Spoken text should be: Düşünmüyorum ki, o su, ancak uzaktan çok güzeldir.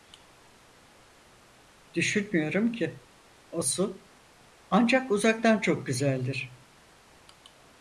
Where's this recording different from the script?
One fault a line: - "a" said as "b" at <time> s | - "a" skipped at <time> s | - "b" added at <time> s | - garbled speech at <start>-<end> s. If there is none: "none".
none